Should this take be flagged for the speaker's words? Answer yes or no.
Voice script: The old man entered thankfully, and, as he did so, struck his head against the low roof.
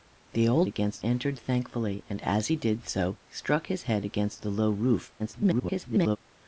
yes